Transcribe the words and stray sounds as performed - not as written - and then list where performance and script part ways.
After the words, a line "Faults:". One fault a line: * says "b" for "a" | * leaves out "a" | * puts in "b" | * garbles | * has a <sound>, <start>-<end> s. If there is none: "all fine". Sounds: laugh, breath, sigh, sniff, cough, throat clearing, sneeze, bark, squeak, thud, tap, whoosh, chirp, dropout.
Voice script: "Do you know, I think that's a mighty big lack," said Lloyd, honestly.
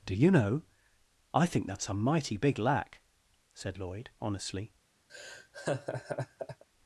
"Do you know, I think that's a mighty big lack," said Lloyd, honestly.
Faults:
* has a laugh, 5.1-6.6 s